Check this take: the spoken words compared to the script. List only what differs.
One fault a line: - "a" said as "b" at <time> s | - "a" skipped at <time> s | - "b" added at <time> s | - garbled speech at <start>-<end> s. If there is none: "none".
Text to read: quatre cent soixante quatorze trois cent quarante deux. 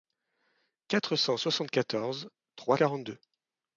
- "cent" skipped at 2.8 s